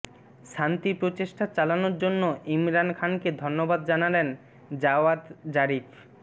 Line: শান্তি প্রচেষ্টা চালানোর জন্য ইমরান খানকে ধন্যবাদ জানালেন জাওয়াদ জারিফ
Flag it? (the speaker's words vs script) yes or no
no